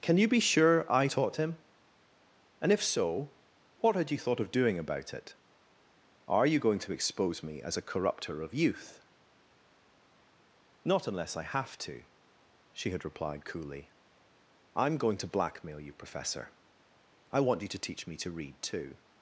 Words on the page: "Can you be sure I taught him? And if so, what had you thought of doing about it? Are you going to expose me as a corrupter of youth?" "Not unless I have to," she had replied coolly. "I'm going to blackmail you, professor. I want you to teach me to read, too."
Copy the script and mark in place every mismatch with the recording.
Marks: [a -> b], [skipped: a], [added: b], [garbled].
"Can you be sure I taught him? And if so, what had you thought of doing about it? Are you going to expose me as a corrupter of youth?" "Not unless I have to," she had replied coolly. "I'm going to blackmail you, professor. I want you to teach me to read, too."